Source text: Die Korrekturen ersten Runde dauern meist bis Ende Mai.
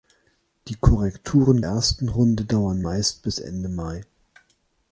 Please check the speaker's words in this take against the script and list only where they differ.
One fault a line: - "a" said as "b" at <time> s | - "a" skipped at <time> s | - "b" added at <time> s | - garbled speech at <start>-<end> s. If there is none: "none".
none